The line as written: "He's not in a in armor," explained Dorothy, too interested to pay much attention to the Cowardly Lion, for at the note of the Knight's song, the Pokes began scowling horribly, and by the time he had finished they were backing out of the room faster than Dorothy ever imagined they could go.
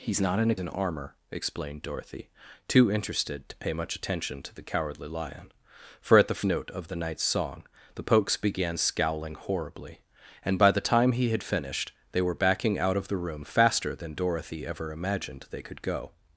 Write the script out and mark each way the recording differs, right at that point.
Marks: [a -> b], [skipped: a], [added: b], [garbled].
"He's not in a in armor," explained Dorothy, too interested to pay much attention to the Cowardly Lion, for at the note of the Knight's song, the Pokes began scowling horribly, and by the time he had finished they were backing out of the room faster than Dorothy ever imagined they could go.